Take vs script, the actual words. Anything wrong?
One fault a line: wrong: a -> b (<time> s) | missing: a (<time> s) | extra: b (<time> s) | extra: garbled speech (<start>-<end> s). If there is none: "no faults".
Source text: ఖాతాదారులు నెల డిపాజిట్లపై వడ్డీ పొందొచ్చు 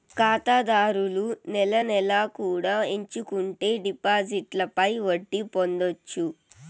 extra: నెలా కూడా ఎంచుకుంటే (1.8 s)